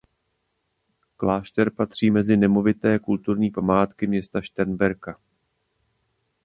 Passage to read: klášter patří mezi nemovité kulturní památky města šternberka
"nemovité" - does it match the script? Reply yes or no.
yes